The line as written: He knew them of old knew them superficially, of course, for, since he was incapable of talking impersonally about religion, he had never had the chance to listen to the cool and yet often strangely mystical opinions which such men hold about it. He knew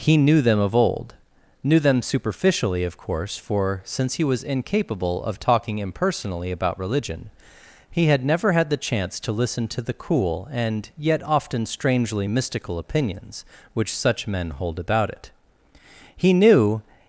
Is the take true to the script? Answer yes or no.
yes